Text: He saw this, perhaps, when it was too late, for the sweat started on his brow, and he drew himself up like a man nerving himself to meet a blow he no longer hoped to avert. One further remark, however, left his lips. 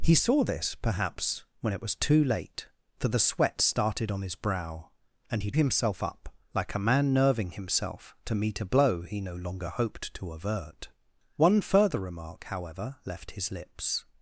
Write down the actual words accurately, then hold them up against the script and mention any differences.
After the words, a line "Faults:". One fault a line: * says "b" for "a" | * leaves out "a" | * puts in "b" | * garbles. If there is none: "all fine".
He saw this, perhaps, when it was too late, for the sweat started on his brow, and he himself up like a man nerving himself to meet a blow he no longer hoped to avert. One further remark, however, left his lips.
Faults:
* leaves out "drew"